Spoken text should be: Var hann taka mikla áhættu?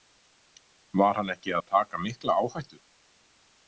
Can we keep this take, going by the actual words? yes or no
no